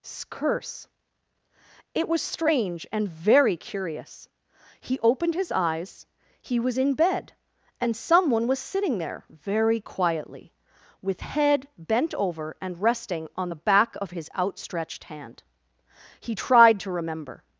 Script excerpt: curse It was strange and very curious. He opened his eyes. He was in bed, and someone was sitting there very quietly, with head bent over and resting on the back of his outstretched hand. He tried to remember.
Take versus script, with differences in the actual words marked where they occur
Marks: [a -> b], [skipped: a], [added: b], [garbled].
curse It was strange and very curious. He opened his eyes. He was in bed, and someone was sitting there very quietly, with head bent over and resting on the back of his outstretched hand. He tried to remember.